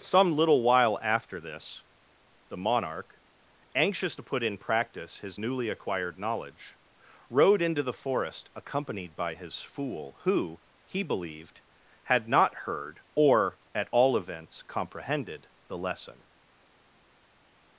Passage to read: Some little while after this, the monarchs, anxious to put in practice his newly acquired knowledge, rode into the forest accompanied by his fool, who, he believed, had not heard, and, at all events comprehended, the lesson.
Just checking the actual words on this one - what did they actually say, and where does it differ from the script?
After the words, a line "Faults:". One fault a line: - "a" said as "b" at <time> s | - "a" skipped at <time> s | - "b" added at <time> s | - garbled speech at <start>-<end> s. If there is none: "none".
Some little while after this, the monarch, anxious to put in practice his newly acquired knowledge, rode into the forest accompanied by his fool, who, he believed, had not heard, or, at all events comprehended, the lesson.
Faults:
- "monarchs" said as "monarch" at 2.6 s
- "and" said as "or" at 13.1 s